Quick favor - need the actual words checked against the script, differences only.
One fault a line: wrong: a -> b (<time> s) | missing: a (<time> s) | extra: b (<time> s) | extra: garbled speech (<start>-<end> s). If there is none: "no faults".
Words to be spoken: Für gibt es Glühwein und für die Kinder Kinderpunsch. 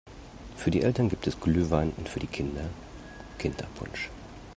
extra: die Eltern (0.7 s)